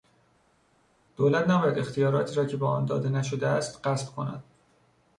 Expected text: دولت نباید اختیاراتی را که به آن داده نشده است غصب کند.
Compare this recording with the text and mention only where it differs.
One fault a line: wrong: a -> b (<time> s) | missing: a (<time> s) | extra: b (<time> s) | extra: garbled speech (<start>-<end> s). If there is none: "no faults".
no faults